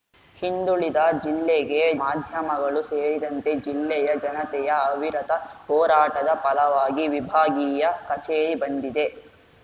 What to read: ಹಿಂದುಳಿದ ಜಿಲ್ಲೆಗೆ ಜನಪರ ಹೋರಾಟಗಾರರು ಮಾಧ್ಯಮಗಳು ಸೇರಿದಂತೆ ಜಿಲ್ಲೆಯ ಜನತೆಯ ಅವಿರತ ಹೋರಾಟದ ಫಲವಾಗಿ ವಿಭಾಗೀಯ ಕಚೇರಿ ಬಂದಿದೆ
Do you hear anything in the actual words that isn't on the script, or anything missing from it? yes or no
yes